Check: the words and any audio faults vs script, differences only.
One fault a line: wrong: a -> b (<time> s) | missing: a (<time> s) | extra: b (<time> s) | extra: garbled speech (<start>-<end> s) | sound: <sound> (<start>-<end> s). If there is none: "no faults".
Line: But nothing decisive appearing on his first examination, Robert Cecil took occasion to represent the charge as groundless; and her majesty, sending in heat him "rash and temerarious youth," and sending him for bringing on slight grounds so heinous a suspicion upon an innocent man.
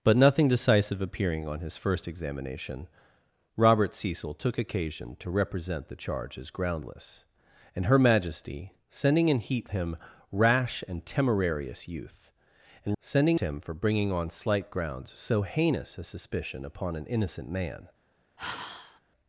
sound: sigh (18.4-19.0 s)